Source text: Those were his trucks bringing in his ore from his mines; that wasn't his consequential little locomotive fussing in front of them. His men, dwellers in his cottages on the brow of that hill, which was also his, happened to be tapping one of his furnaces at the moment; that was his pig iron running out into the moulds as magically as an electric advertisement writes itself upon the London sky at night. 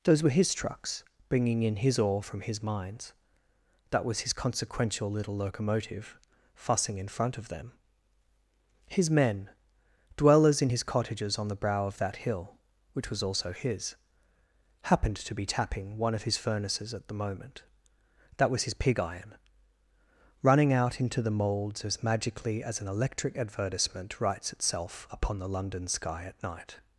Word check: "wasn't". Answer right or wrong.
wrong